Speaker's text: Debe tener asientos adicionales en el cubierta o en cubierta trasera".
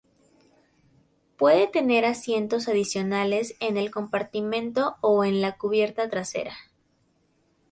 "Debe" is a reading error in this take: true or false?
true